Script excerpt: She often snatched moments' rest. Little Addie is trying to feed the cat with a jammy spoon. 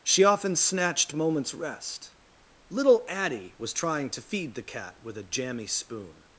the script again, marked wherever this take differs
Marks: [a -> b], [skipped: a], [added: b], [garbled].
She often snatched moments' rest. Little Addie [is -> was] trying to feed the cat with a jammy spoon.